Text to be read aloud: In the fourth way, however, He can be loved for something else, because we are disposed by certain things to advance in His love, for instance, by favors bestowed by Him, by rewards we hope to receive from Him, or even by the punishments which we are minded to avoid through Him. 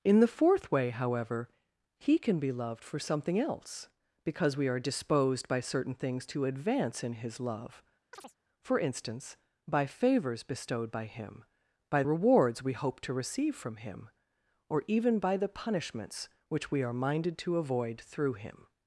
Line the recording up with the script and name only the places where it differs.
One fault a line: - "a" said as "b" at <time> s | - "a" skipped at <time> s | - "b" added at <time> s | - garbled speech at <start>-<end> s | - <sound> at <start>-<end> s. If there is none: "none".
- chirp at 8.1-8.4 s